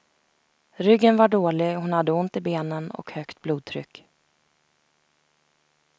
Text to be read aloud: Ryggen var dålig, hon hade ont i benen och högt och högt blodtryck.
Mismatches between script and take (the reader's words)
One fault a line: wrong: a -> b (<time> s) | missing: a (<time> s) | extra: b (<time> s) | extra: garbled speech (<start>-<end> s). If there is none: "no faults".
missing: och högt (3.4 s)